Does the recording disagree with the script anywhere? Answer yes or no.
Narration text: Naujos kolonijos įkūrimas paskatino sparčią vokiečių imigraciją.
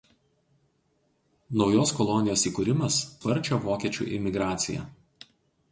yes